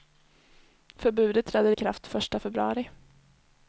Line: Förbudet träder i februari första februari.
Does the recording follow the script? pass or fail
fail